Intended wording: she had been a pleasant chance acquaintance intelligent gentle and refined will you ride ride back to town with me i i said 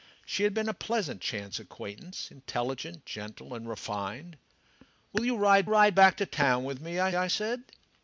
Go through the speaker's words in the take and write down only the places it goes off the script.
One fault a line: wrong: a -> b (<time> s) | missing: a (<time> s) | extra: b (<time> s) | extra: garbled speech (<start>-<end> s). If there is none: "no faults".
no faults